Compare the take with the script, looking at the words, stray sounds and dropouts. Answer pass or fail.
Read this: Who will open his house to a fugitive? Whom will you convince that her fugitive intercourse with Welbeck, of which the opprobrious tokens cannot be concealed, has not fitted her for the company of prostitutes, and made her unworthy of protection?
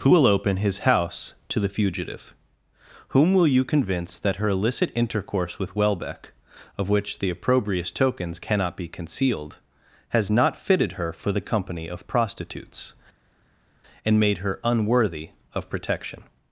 fail